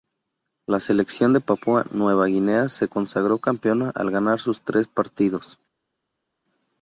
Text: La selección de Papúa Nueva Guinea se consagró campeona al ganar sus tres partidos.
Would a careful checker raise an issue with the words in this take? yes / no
no